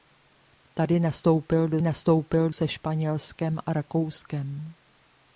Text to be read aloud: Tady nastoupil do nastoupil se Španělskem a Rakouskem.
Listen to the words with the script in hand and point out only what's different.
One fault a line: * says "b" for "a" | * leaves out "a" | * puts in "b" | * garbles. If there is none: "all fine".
all fine